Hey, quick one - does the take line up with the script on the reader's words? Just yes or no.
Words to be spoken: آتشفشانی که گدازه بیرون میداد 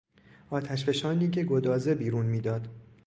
yes